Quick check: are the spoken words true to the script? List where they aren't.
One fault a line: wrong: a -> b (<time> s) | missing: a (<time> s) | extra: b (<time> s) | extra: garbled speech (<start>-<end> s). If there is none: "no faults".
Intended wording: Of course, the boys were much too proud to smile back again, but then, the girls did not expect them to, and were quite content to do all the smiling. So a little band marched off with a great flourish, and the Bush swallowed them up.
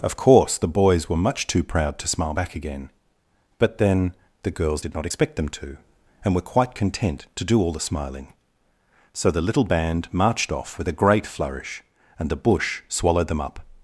wrong: a -> the (9.3 s)